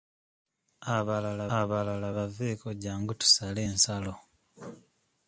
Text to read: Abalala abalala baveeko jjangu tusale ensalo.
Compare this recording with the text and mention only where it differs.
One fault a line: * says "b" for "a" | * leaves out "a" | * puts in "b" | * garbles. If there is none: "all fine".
all fine